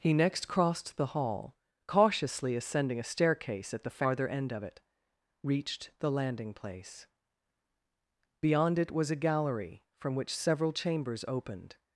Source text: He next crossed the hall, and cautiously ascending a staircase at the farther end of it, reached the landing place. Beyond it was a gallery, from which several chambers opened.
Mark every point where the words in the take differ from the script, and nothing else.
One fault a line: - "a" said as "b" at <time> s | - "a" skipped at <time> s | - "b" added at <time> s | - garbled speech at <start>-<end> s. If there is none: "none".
- "and" skipped at 1.6 s